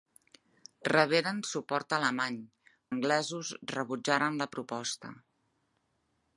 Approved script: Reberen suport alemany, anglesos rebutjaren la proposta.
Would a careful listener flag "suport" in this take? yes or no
no